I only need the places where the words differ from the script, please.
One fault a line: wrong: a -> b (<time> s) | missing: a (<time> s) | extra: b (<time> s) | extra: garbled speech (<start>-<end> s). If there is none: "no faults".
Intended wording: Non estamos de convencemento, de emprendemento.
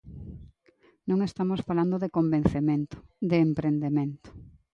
extra: falando (1.7 s)